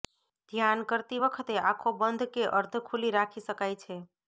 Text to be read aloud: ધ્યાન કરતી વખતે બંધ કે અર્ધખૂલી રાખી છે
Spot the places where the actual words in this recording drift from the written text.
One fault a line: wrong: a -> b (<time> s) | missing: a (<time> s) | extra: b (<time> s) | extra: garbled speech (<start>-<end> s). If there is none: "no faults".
extra: આંખો (1.6 s)
extra: શકાય (3.5 s)